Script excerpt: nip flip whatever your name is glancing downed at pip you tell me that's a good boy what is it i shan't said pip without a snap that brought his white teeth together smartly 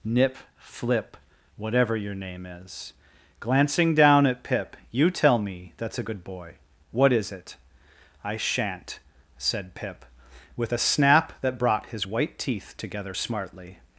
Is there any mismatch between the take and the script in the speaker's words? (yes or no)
yes